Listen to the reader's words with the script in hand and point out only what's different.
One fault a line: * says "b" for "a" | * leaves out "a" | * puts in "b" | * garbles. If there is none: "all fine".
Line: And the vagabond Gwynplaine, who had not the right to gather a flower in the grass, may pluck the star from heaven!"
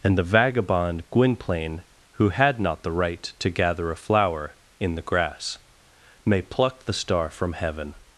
all fine